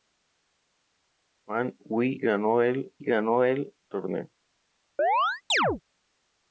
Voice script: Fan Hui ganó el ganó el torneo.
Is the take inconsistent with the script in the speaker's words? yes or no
no